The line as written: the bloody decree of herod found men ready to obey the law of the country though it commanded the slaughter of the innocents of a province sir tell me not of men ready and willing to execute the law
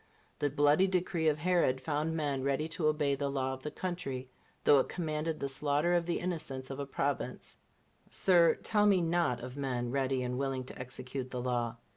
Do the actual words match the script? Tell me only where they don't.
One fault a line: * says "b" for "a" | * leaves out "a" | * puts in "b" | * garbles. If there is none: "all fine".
all fine